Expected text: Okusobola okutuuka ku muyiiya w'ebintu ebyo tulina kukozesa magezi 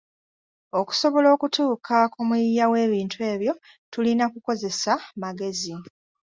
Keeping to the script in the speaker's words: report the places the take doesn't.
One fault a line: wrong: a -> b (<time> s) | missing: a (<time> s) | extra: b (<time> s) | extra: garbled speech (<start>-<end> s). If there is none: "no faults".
no faults